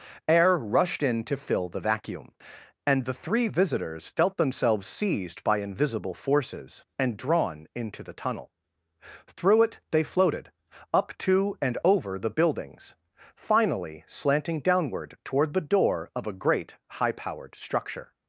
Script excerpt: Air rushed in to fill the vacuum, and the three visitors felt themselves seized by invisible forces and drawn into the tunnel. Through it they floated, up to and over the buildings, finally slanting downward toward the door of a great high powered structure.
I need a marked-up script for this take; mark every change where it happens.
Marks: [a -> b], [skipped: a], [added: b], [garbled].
Air rushed in to fill the vacuum, and the three visitors felt themselves seized by invisible forces and drawn into the tunnel. Through it they floated, up to and over the buildings, finally slanting downward toward the door of a great high powered structure.